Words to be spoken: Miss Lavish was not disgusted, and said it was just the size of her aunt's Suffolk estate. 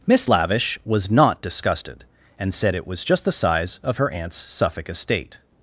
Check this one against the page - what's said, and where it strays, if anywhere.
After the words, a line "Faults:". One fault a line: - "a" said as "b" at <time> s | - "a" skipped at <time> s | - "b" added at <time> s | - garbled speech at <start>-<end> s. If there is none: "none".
Miss Lavish was not disgusted, and said it was just the size of her aunt's Suffolk estate.
Faults:
none